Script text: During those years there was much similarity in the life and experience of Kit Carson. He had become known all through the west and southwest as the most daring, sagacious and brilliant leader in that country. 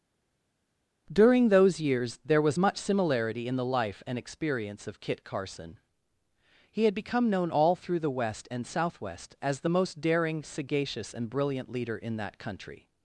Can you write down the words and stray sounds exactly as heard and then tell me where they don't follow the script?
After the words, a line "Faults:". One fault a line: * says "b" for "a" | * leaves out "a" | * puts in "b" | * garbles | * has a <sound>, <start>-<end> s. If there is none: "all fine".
During those years there was much similarity in the life and experience of Kit Carson. He had become known all through the west and southwest as the most daring, sagacious and brilliant leader in that country.
Faults:
all fine